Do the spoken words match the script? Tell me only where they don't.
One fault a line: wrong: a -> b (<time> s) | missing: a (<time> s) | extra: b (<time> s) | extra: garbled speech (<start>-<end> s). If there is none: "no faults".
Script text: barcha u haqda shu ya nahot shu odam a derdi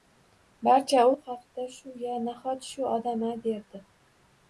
no faults